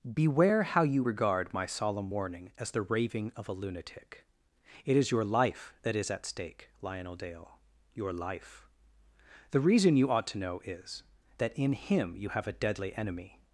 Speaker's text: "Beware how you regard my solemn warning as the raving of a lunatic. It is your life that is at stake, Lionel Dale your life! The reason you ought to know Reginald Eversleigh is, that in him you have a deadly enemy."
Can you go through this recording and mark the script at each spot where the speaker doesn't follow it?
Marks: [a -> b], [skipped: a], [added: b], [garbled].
"Beware how you regard my solemn warning as the raving of a lunatic. It is your life that is at stake, Lionel Dale your life! The reason you ought to know [skipped: Reginald Eversleigh] is, that in him you have a deadly enemy."